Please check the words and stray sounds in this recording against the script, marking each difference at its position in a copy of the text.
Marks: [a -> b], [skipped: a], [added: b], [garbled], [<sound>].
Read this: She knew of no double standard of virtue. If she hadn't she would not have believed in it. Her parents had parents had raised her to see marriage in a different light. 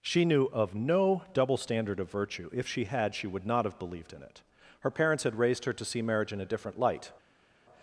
She knew of no double standard of virtue. If she [hadn't -> had] she would not have believed in it. Her parents had [skipped: parents had] raised her to see marriage in a different light.